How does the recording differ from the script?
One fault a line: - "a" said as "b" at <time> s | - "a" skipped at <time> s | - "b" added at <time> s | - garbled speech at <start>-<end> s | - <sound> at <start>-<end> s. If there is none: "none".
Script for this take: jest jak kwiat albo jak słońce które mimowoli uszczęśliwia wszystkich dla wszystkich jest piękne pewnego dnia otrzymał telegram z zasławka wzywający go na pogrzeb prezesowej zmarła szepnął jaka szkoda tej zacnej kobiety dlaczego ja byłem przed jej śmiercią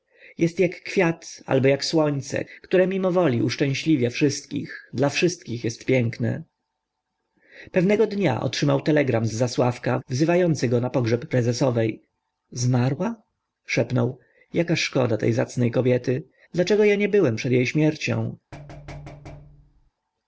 - "nie" added at 16.9 s
- thud at 18.5-19.9 s